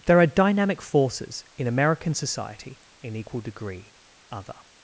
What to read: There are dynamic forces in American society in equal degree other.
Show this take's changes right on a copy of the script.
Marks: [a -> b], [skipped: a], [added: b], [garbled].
There are dynamic forces in American society in equal degree other.